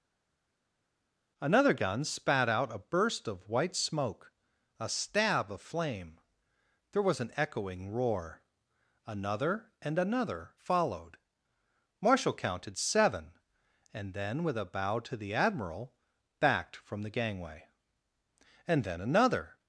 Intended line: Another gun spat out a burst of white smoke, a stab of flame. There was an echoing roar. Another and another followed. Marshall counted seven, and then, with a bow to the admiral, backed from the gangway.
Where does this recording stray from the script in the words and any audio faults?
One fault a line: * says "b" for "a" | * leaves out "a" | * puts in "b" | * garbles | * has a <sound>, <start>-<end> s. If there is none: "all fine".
* puts in "And then another"